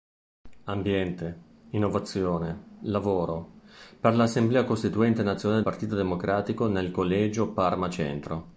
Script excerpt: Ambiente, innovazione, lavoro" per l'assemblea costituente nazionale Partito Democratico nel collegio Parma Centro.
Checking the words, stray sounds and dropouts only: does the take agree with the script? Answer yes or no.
yes